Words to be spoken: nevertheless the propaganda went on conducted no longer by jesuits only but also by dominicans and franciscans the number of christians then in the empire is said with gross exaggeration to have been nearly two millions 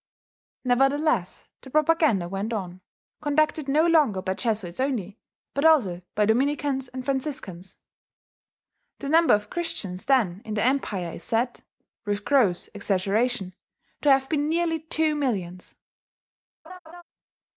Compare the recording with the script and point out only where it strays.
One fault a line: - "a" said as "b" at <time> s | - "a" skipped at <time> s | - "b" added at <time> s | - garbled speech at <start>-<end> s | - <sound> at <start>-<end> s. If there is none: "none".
- laugh at 16.6-17.0 s